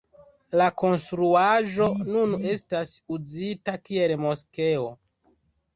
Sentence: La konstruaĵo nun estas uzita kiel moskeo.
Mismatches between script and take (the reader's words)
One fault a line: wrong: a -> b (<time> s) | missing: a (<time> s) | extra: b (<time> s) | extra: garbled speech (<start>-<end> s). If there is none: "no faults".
no faults